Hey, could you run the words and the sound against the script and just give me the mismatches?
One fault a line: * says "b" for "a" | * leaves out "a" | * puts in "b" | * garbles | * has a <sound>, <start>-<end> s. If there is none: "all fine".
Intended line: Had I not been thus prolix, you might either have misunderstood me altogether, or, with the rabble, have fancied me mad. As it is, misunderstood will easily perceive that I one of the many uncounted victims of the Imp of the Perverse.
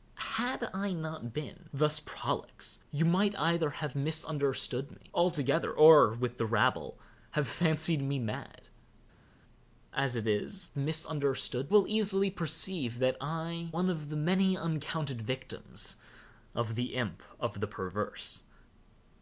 all fine